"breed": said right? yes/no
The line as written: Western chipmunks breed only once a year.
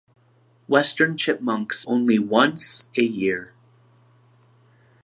no